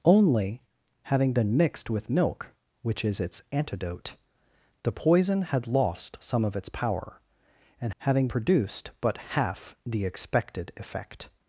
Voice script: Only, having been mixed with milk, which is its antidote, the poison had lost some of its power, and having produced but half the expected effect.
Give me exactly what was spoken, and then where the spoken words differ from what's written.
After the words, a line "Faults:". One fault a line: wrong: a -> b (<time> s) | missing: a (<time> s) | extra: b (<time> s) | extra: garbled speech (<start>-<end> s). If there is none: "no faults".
Only, having been mixed with milk, which is its antidote, the poison had lost some of its power, and having produced but half the expected effect.
Faults:
no faults